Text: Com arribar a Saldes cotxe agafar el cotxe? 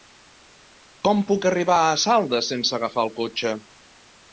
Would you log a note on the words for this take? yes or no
yes